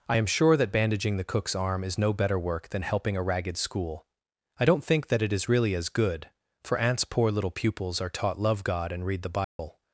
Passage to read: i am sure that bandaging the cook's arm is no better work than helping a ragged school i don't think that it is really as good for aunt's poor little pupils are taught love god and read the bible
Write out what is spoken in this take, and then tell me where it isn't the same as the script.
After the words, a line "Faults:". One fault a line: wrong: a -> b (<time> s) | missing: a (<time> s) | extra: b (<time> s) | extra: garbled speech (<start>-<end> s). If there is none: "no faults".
i am sure that bandaging the cook's arm is no better work than helping a ragged school i don't think that it is really as good for aunt's poor little pupils are taught love god and read the bible
Faults:
no faults